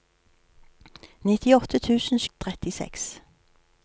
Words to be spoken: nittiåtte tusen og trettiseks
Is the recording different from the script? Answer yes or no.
no